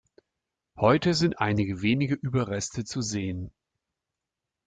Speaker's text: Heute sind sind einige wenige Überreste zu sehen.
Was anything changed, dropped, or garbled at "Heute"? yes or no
no